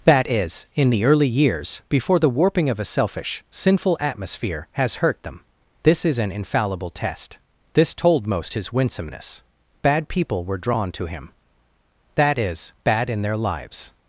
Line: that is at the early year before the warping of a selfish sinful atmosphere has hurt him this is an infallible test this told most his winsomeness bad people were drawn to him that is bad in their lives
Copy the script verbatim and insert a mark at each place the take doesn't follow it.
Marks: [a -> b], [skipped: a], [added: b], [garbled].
that is [at -> in] the early [year -> years] before the warping of a selfish sinful atmosphere has hurt [him -> them] this is an infallible test this told most his winsomeness bad people were drawn to him that is bad in their lives